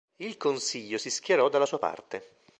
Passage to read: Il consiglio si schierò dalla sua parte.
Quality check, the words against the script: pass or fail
pass